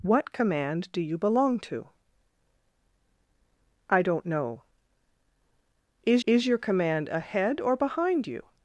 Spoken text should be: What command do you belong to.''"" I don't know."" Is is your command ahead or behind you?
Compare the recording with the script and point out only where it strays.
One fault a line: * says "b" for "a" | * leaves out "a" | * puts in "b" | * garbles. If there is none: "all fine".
all fine